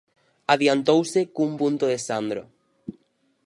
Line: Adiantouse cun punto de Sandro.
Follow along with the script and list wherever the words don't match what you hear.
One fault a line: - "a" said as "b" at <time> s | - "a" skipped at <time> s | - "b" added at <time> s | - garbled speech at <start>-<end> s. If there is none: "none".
none